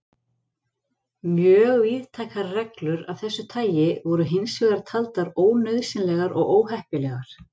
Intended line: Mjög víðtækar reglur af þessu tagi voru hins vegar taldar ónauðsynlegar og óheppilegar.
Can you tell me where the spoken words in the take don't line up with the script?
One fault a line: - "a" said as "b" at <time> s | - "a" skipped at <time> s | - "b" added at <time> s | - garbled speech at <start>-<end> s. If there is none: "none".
none